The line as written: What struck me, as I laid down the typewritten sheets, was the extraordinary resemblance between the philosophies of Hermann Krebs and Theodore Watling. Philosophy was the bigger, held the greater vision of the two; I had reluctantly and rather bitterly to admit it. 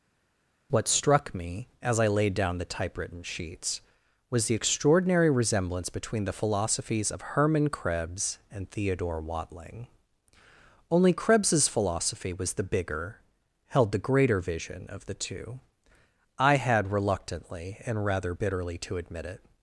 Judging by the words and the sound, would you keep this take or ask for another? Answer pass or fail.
fail